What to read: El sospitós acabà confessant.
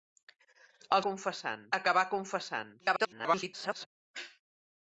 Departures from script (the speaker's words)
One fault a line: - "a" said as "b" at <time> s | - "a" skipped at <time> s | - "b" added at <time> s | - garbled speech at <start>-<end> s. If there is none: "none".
- "sospitós" said as "confessant" at 1.1 s
- garbled speech at 2.8-3.9 s